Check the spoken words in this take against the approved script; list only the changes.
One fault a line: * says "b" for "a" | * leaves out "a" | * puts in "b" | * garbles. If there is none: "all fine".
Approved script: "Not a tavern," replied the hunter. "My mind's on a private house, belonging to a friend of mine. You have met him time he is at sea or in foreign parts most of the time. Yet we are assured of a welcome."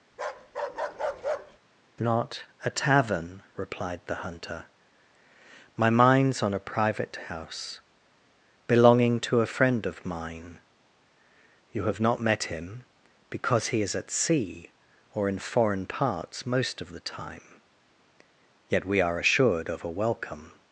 * puts in "not"
* says "because" for "time"